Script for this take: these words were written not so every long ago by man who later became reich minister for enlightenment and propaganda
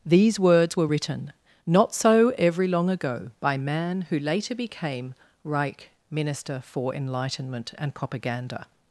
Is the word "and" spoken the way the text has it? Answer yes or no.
yes